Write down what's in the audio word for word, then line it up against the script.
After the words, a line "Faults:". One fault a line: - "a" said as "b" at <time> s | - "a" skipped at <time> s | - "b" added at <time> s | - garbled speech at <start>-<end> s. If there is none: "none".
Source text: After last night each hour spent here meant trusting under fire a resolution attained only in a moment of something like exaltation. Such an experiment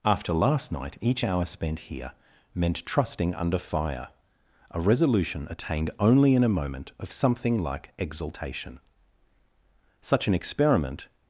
After last night each hour spent here meant trusting under fire a resolution attained only in a moment of something like exaltation. Such an experiment
Faults:
none